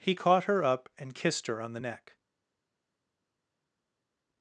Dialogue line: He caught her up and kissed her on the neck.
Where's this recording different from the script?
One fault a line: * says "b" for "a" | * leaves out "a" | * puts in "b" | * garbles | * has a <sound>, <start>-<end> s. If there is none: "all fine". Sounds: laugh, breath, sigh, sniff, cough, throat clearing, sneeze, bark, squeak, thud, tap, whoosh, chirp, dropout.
all fine